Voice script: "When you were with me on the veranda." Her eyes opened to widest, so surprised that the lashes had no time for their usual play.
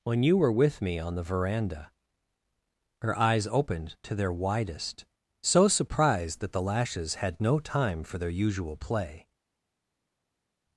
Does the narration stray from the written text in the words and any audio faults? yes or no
yes